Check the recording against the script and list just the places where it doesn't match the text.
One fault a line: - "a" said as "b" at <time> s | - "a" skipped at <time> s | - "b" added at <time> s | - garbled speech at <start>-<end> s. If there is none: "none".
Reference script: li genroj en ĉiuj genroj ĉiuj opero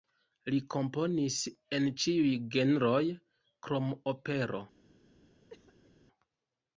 - "genroj" said as "komponis" at 0.8 s
- "ĉiuj" said as "krom" at 3.7 s